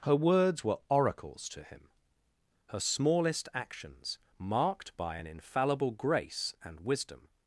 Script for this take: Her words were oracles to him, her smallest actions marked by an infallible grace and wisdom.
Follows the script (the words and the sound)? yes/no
yes